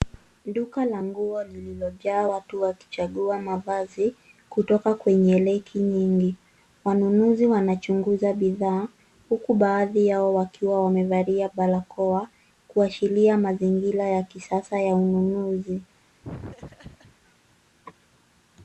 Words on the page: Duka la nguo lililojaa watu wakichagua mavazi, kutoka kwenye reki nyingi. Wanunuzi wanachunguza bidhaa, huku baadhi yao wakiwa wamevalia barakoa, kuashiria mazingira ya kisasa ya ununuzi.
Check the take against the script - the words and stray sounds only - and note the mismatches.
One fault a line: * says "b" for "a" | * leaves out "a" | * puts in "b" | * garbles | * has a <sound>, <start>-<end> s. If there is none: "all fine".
* has a laugh, 16.2-17.2 s